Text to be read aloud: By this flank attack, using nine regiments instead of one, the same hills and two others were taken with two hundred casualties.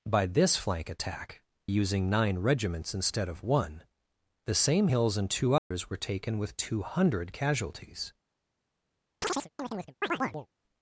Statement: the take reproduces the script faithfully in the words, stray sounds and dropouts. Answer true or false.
false